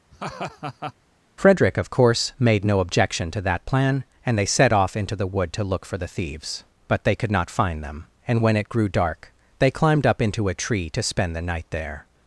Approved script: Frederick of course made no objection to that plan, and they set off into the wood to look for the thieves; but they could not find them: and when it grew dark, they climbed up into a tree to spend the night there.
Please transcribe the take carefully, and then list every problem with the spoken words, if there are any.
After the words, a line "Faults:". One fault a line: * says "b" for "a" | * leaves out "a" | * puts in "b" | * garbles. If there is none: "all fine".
Frederick of course made no objection to that plan, and they set off into the wood to look for the thieves; but they could not find them: and when it grew dark, they climbed up into a tree to spend the night there.
Faults:
all fine